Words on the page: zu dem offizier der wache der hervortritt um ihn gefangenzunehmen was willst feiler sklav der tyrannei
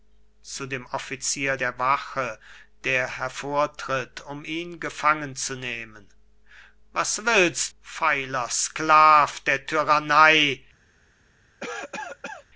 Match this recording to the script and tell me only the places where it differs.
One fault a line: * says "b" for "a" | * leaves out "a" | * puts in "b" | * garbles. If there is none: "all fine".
all fine